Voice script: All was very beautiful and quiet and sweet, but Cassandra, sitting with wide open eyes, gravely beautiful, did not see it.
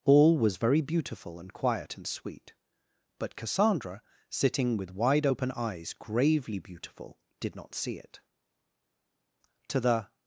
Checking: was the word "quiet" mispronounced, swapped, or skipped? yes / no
no